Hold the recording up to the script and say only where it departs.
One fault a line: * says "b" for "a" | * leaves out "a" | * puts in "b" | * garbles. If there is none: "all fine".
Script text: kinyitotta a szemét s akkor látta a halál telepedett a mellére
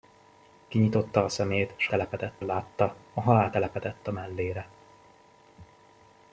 * says "telepedett" for "akkor"